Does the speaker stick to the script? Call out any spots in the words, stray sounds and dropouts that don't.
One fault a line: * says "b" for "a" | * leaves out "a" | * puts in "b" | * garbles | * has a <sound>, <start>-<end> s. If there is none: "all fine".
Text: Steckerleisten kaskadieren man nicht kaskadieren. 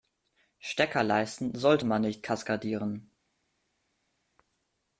* says "sollte" for "kaskadieren"